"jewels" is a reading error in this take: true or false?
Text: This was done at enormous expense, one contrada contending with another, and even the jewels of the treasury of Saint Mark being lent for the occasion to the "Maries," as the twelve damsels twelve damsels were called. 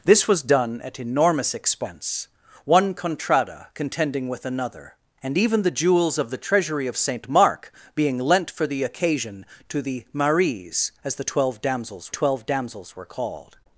false